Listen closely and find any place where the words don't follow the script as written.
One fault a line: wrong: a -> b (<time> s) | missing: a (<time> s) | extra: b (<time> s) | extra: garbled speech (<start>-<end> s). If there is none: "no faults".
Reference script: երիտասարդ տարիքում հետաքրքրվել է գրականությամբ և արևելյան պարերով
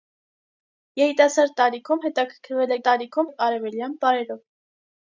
wrong: գրականությամբ -> տարիքում (2.9 s)